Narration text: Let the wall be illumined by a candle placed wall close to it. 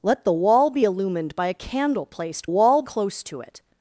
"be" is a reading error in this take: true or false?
false